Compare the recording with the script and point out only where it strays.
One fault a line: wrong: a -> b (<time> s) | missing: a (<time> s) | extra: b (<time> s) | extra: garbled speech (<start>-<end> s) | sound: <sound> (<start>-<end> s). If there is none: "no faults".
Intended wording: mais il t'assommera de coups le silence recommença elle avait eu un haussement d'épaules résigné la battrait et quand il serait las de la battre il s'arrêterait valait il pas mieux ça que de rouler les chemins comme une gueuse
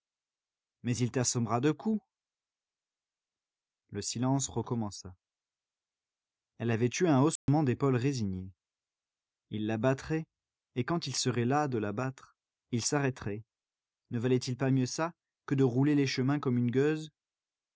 sound: dropout (7.4-7.5 s)
extra: il (9.5 s)
extra: ne (14.1 s)